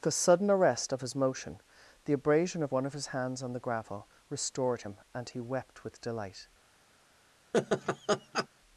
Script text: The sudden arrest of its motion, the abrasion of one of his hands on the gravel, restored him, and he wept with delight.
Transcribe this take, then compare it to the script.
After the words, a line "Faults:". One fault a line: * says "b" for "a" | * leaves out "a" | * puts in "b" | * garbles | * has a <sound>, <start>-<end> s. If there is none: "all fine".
The sudden arrest of his motion, the abrasion of one of his hands on the gravel, restored him, and he wept with delight.
Faults:
* says "his" for "its"
* has a laugh, 7.5-8.5 s